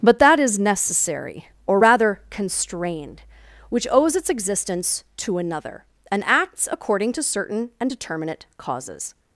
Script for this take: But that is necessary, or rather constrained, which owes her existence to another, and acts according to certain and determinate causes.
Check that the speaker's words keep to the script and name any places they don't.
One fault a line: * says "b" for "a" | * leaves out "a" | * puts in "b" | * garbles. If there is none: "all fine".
* says "its" for "her"